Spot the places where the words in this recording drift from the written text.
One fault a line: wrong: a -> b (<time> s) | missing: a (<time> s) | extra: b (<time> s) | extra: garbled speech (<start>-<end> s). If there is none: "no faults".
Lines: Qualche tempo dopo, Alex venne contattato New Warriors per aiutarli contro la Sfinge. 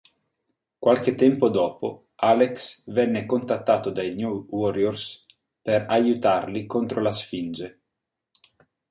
extra: dai (3.9 s)